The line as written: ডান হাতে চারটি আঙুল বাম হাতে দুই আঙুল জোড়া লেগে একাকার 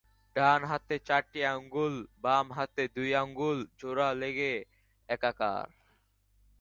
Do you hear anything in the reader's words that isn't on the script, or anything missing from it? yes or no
no